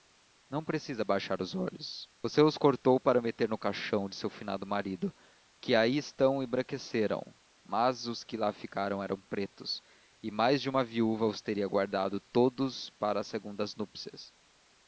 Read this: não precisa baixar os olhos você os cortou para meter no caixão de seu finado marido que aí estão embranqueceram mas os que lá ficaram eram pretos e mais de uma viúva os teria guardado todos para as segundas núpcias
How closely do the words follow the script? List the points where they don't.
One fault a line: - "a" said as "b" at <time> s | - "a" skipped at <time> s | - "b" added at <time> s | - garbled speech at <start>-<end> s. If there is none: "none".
none